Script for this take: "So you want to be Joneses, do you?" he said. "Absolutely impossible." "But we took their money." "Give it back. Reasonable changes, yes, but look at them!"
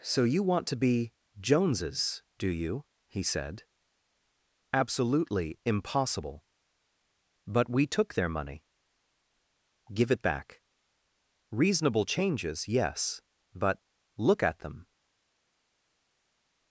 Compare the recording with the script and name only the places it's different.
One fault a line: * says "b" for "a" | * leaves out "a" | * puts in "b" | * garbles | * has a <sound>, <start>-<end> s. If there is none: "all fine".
all fine